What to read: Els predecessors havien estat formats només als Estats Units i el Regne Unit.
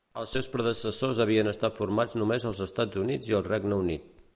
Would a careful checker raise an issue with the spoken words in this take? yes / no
yes